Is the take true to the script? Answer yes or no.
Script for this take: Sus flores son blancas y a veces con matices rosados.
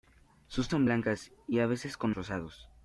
no